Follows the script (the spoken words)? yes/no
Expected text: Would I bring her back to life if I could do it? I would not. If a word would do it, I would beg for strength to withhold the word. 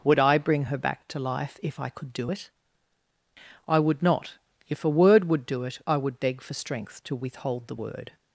yes